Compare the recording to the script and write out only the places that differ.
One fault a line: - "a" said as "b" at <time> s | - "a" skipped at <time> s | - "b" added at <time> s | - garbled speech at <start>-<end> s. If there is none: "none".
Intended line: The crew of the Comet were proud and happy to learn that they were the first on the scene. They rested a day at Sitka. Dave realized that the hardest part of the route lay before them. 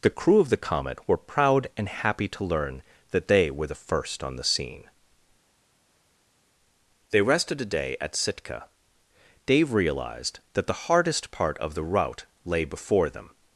none